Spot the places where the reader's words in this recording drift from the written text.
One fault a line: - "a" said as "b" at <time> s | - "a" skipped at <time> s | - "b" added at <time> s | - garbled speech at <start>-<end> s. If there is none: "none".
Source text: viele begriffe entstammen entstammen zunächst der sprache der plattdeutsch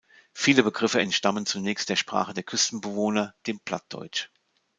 - "entstammen" skipped at 1.4 s
- "küstenbewohner dem" added at 2.4 s